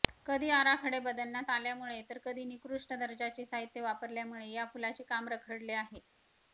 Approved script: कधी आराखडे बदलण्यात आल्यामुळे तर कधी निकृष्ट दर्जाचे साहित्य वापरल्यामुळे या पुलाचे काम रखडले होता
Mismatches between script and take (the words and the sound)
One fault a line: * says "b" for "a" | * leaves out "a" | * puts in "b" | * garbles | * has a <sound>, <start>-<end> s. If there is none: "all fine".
* says "आहे" for "होता"